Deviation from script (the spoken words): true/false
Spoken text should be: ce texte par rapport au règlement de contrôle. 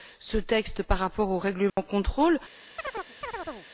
false